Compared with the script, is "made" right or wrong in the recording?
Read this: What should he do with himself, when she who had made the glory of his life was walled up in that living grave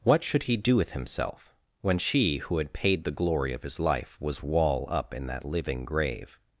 wrong